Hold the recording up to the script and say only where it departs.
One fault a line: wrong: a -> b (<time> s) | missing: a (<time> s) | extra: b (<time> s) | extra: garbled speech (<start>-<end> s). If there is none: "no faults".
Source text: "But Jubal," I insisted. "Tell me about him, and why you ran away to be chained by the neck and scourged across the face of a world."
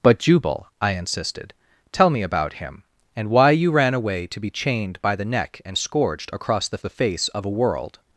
extra: the (6.8 s)